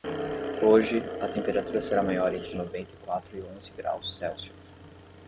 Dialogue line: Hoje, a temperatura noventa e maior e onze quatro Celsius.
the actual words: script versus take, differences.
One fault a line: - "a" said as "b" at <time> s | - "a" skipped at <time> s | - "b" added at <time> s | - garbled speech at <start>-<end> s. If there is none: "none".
- "será maior entre" added at 1.8 s
- "maior" said as "quatro" at 3.0 s
- "quatro" said as "graus" at 3.7 s